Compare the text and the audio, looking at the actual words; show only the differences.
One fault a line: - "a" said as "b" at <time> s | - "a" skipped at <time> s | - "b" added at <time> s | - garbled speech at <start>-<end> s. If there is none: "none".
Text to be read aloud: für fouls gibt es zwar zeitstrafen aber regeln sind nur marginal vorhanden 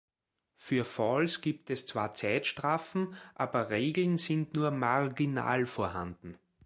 none